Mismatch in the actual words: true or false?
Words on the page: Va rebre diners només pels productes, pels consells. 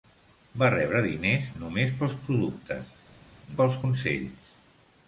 false